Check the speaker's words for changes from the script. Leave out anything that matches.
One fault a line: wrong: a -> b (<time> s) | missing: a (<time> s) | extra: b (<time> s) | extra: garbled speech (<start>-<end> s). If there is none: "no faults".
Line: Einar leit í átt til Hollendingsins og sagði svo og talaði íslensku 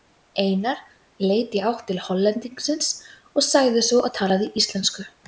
no faults